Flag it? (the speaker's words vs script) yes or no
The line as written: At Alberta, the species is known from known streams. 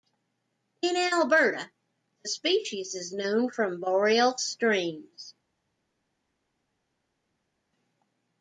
yes